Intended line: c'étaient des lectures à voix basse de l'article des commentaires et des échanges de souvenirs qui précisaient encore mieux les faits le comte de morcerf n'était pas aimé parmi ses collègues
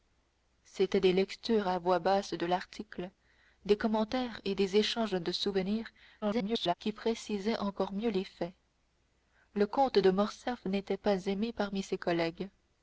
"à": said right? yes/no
yes